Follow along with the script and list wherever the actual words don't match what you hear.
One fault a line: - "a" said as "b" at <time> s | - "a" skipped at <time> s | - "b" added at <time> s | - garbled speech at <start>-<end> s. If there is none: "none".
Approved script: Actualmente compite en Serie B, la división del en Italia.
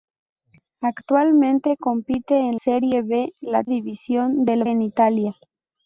none